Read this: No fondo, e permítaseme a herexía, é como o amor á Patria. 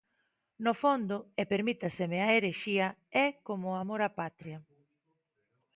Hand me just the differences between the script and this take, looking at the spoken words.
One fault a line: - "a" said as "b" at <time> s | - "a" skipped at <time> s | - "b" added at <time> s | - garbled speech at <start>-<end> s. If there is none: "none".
none